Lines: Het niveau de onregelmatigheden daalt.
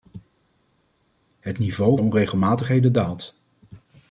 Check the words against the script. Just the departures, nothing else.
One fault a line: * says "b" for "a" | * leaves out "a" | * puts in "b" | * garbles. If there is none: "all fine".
all fine